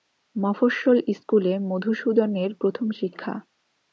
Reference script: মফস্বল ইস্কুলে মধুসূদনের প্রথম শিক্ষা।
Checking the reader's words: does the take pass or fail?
pass